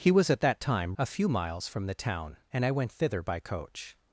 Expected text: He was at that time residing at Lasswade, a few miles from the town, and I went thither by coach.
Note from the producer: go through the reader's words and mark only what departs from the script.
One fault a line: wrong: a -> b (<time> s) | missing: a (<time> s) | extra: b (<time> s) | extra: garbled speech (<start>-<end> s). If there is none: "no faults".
missing: residing at Lasswade (0.9 s)